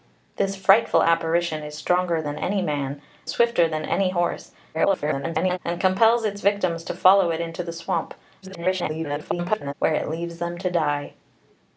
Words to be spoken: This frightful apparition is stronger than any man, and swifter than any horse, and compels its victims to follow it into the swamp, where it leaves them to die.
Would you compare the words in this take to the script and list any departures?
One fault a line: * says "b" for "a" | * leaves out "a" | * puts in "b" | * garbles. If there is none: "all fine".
* leaves out "and"
* garbles
* garbles